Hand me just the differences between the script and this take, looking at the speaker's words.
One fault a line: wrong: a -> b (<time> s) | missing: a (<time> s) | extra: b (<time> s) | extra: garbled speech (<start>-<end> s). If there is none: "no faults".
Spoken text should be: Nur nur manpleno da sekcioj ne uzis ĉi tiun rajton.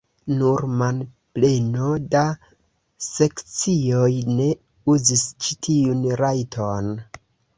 missing: nur (0.6 s)